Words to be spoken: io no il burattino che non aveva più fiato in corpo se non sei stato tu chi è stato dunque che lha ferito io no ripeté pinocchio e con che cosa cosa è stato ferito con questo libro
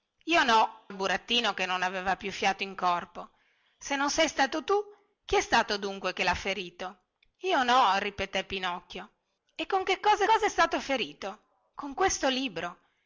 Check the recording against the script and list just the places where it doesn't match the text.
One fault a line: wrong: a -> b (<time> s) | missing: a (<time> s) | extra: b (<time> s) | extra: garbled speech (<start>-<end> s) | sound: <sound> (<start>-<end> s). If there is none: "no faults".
no faults